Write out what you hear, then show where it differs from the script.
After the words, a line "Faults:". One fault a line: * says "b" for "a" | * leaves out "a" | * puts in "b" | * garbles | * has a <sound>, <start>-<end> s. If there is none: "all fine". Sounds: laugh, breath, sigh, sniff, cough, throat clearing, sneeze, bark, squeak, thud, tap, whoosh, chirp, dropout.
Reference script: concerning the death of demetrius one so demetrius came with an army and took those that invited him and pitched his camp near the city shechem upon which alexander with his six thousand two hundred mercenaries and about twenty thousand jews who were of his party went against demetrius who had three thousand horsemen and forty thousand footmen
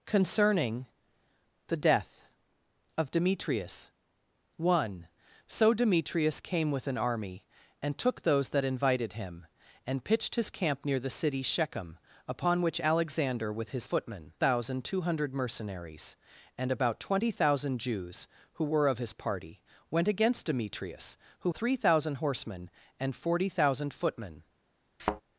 concerning the death of demetrius one so demetrius came with an army and took those that invited him and pitched his camp near the city shechem upon which alexander with his footmen thousand two hundred mercenaries and about twenty thousand jews who were of his party went against demetrius who three thousand horsemen and forty thousand footmen
Faults:
* says "footmen" for "six"
* leaves out "had"
* has a thud, 25.0-25.2 s